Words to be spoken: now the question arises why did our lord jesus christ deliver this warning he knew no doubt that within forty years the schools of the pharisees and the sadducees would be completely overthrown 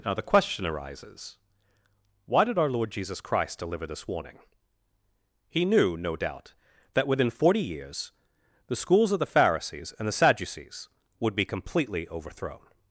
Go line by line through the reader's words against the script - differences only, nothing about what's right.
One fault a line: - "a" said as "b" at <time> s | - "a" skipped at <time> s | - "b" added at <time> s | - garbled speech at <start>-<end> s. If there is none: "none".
none